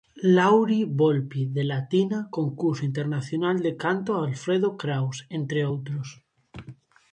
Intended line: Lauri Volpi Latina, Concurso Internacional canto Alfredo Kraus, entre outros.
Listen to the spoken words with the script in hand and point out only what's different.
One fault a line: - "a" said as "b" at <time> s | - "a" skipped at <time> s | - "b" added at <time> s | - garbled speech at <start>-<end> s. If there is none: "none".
- "de" added at 1.4 s
- "de" added at 3.6 s